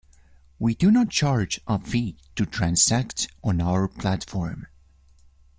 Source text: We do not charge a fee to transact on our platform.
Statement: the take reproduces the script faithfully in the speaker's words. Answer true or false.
true